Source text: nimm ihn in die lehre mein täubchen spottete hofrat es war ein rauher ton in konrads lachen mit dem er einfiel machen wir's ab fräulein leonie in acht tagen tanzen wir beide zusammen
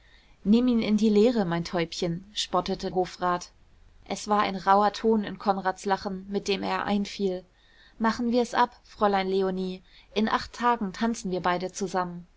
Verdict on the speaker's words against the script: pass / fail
pass